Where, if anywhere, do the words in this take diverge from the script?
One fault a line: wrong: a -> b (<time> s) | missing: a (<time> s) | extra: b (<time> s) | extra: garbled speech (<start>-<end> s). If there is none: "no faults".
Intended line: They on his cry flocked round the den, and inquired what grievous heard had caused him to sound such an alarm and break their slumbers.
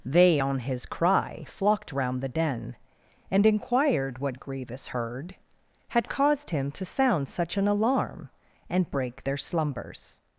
no faults